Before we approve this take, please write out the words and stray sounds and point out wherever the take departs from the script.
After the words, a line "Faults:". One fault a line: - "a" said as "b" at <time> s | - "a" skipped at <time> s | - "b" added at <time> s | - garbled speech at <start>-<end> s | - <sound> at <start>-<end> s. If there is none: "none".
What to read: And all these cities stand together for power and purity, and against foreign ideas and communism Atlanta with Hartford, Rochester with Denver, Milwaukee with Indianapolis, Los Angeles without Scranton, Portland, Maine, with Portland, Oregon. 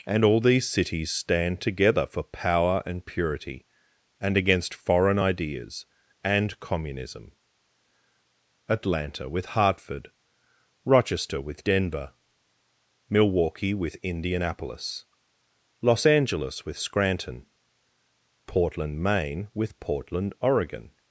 And all these cities stand together for power and purity, and against foreign ideas and communism Atlanta with Hartford, Rochester with Denver, Milwaukee with Indianapolis, Los Angeles with Scranton, Portland, Maine, with Portland, Oregon.
Faults:
- "without" said as "with" at 16.6 s